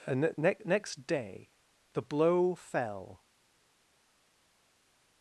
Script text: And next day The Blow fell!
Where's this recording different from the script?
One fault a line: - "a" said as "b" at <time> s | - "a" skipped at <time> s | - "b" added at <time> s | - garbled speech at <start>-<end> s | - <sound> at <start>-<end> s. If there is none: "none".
- "ne" added at 0.4 s